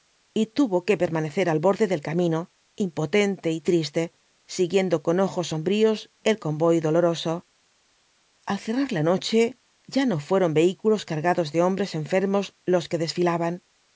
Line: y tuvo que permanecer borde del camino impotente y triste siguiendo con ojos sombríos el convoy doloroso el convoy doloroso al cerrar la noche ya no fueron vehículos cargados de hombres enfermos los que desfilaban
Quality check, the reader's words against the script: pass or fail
fail